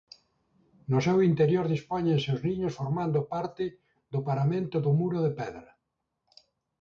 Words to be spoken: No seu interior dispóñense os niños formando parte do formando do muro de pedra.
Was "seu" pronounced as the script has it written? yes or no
yes